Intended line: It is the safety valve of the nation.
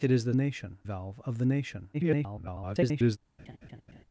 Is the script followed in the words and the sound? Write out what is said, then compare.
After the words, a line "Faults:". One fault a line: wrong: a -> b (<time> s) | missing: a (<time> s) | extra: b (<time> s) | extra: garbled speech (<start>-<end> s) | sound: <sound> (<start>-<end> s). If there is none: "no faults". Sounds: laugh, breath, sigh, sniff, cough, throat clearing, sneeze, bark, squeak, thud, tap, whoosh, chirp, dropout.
It is the nation valve of the nation. [garbled]
Faults:
wrong: safety -> nation (0.3 s)
extra: garbled speech (1.9-3.2 s)
sound: laugh (3.4-4.0 s)